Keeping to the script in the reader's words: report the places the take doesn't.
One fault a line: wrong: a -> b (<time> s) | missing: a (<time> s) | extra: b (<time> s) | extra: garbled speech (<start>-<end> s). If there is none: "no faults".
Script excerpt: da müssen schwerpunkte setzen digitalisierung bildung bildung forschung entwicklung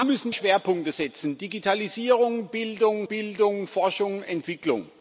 no faults